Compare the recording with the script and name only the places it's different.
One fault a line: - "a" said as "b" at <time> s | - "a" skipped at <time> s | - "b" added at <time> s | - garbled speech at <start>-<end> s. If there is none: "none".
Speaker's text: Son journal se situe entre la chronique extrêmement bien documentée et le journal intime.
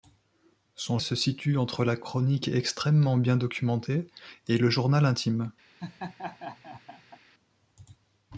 - "journal" skipped at 1.0 s